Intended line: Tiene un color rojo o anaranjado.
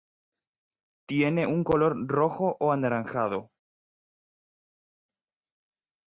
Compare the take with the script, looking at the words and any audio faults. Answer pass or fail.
pass